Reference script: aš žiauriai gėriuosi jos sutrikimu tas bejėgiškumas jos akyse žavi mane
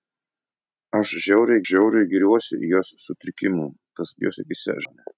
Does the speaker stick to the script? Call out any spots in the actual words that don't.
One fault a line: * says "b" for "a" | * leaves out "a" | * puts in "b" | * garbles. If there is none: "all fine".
* puts in "žiauriai"
* leaves out "bejėgiškumas"
* leaves out "žavi"